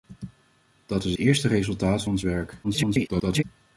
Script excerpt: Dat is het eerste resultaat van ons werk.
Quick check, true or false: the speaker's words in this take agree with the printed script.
false